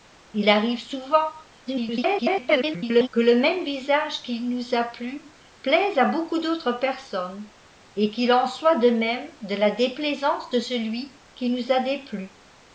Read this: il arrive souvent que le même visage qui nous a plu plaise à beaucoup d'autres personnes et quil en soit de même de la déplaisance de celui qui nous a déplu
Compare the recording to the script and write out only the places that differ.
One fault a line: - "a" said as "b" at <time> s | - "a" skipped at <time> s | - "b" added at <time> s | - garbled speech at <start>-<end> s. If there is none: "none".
- garbled speech at 1.7-3.1 s